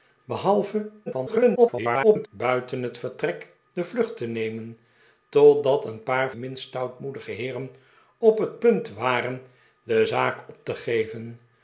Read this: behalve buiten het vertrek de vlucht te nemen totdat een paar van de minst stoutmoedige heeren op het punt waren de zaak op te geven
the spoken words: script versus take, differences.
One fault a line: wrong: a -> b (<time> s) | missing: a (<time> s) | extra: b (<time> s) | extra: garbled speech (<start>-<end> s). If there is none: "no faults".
extra: garbled speech (1.1-2.3 s)
missing: van de (6.3 s)